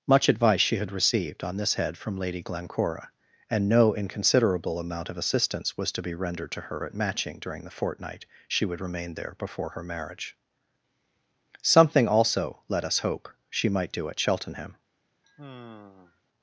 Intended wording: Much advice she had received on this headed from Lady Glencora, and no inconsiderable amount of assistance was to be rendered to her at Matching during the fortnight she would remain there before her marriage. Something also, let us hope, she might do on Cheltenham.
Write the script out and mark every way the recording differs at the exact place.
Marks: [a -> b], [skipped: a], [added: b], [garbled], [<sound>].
Much advice she had received on this [headed -> head] from Lady Glencora, and no inconsiderable amount of assistance was to be rendered to her at Matching during the fortnight she would remain there before her marriage. Something also, let us hope, she might do [on -> at] Cheltenham. [sigh]